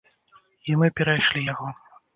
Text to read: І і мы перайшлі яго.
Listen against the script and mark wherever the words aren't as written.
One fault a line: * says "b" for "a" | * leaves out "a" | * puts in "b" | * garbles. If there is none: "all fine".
* leaves out "і"